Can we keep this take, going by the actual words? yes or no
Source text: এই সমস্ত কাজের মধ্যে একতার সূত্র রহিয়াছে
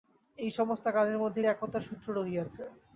yes